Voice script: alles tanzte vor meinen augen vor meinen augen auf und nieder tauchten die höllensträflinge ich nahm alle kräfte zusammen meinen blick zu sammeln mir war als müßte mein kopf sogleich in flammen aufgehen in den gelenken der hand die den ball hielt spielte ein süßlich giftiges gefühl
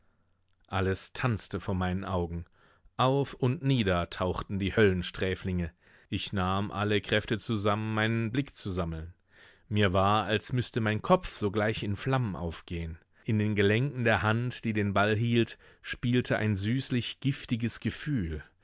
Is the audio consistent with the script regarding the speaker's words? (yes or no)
no